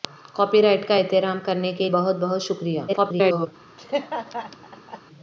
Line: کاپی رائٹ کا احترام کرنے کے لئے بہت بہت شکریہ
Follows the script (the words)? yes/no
no